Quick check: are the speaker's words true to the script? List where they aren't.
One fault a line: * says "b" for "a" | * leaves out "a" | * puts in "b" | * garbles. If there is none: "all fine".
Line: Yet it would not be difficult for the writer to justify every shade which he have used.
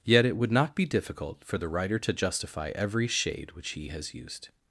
* says "has" for "have"